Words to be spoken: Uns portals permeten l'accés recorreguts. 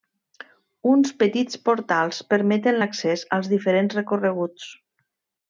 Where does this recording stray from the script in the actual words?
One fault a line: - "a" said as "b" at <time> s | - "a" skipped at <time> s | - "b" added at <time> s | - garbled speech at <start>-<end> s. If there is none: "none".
- "petits" added at 1.2 s
- "als diferents" added at 3.4 s